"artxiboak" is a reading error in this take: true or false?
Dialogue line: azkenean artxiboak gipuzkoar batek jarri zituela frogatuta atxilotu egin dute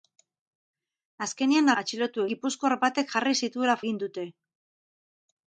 true